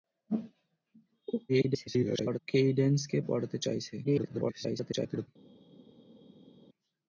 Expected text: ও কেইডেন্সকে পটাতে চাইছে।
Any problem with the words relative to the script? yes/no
yes